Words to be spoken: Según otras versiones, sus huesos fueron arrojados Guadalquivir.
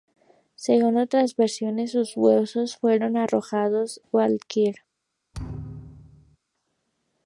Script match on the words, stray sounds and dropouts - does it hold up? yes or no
no